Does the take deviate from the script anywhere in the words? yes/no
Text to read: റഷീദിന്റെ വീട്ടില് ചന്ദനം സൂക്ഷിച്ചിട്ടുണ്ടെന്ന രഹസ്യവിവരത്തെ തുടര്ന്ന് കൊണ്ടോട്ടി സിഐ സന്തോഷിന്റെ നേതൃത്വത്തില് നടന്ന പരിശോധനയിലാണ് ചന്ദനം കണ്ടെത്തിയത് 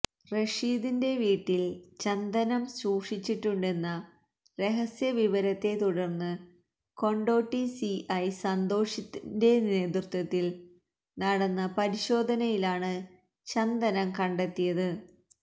no